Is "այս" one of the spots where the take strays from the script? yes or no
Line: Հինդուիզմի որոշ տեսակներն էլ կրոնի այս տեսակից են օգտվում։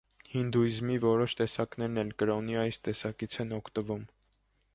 no